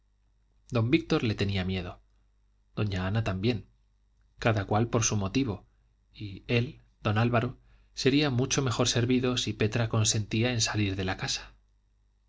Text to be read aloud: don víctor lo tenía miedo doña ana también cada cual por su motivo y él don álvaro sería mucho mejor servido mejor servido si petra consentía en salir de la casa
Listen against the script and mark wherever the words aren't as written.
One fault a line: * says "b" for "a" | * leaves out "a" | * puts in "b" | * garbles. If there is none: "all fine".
* says "le" for "lo"
* leaves out "mejor servido"